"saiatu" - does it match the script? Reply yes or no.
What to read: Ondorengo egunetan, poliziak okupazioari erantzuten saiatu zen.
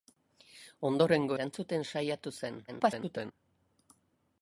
yes